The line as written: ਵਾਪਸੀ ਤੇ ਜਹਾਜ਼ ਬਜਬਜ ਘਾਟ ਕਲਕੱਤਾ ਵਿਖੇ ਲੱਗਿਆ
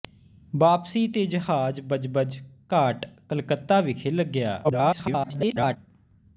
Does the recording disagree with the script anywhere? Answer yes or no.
yes